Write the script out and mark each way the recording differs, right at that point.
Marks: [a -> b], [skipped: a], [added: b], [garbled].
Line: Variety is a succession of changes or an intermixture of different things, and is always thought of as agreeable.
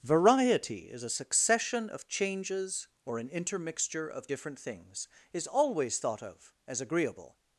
Variety is a succession of changes or an intermixture of different things, [skipped: and] is always thought of as agreeable.